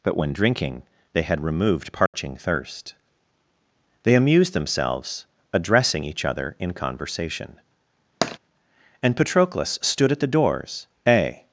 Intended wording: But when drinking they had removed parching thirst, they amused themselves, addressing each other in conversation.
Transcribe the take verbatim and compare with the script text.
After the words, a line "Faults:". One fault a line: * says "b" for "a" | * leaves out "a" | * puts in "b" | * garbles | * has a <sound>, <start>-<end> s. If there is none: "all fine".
But when drinking they had removed parching thirst, they amused themselves, addressing each other in conversation. And Patroclus stood at the doors, a
Faults:
* has a dropout, 2.1-2.1 s
* has a tap, 8.2-8.4 s
* puts in "And Patroclus stood at the doors a"